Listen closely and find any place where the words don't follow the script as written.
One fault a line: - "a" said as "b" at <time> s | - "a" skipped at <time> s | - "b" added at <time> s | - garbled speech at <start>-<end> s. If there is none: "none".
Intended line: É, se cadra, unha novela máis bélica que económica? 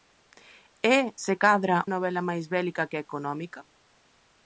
- "unha" skipped at 1.8 s